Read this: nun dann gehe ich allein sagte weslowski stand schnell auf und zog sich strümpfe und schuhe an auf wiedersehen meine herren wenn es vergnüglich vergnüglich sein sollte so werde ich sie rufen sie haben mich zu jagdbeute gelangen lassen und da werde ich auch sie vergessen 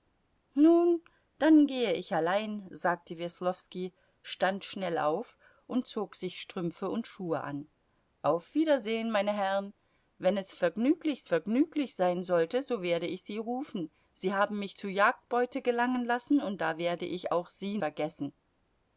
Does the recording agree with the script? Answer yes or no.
yes